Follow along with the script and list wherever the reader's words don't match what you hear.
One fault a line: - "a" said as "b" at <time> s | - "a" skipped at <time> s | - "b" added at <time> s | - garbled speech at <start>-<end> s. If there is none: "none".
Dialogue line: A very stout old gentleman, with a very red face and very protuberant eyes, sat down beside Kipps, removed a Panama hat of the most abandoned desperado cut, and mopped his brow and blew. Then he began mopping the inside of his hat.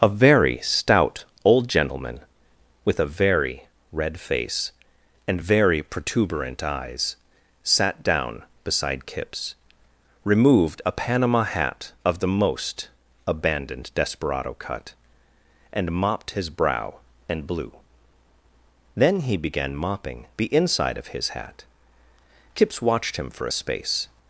- "Kipps watched him for a space" added at 22.5 s